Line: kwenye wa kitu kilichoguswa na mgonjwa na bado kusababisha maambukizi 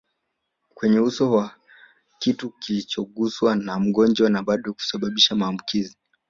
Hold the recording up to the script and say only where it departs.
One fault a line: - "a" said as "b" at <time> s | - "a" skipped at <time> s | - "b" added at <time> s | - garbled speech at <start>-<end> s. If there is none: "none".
- "uso" added at 1.0 s